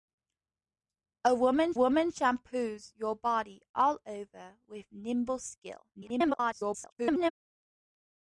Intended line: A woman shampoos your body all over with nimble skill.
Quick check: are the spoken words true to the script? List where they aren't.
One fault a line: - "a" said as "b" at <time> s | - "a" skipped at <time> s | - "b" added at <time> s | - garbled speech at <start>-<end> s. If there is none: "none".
- "woman" added at 1.7 s
- garbled speech at 5.9-7.3 s